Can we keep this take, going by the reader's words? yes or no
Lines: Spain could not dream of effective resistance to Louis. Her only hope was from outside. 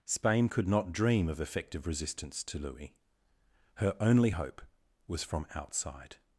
yes